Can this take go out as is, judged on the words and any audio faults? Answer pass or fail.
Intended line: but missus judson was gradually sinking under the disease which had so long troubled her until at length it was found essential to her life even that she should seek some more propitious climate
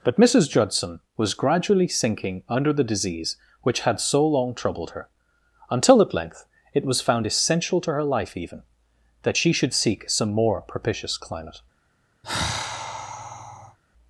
fail